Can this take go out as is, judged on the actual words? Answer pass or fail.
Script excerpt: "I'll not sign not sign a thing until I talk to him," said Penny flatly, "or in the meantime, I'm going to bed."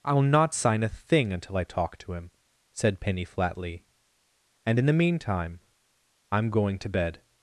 fail